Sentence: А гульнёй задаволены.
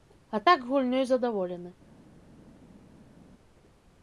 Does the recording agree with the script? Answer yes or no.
no